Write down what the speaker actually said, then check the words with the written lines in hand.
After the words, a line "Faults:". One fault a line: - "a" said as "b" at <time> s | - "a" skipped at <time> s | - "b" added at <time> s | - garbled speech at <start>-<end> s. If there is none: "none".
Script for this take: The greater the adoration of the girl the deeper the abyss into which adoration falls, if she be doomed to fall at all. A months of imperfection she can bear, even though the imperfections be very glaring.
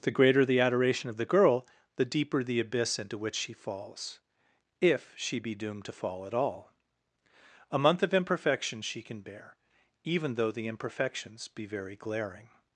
The greater the adoration of the girl the deeper the abyss into which she falls, if she be doomed to fall at all. A month of imperfection she can bear, even though the imperfections be very glaring.
Faults:
- "adoration" said as "she" at 3.4 s
- "months" said as "month" at 7.8 s